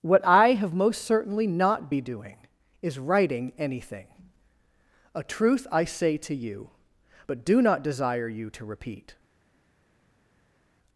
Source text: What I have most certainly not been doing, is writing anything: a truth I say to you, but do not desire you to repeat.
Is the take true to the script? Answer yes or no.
no